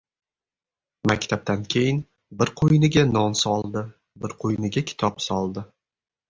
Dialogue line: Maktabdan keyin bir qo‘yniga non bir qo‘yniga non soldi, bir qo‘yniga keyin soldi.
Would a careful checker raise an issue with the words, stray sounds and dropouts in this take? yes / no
yes